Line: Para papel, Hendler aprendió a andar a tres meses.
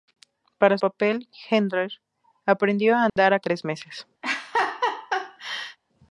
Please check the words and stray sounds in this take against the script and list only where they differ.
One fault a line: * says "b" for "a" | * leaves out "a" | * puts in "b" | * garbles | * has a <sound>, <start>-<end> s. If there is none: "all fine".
* has a dropout, 3.1-3.2 s
* has a laugh, 4.2-5.8 s